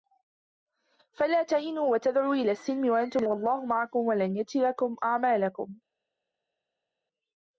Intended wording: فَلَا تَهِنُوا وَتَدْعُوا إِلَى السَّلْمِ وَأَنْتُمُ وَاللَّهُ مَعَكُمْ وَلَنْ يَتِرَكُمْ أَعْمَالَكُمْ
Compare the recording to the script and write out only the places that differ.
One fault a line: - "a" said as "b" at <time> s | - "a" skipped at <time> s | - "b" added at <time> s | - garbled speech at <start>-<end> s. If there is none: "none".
none